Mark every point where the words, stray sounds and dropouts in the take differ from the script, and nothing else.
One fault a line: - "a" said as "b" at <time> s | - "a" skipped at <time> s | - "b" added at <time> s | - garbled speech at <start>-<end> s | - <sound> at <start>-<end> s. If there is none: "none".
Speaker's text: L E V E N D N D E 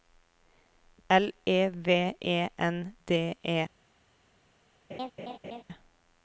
- "N D" skipped at 3.3 s
- laugh at 4.9-5.6 s